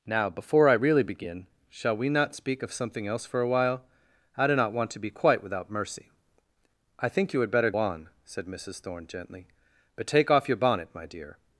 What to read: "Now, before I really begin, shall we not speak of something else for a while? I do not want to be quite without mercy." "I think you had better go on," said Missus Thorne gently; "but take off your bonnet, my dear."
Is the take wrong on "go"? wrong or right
wrong